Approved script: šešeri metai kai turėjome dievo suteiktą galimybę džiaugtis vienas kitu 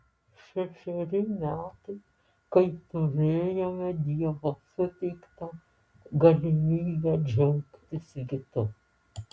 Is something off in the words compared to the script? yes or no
yes